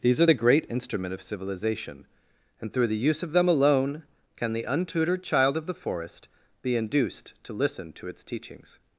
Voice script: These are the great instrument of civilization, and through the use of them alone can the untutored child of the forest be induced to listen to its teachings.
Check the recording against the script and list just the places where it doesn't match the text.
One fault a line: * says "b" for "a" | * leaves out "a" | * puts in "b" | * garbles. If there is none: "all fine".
all fine